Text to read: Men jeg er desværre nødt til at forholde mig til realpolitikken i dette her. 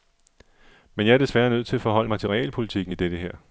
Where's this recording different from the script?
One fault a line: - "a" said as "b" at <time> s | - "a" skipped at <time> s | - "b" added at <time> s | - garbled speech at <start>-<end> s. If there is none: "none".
none